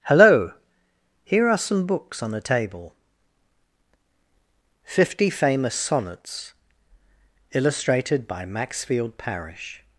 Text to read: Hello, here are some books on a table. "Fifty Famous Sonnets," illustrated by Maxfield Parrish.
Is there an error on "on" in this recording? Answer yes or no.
no